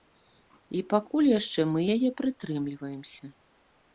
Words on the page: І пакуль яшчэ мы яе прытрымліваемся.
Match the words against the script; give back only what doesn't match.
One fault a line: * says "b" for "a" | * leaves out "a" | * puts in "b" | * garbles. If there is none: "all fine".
all fine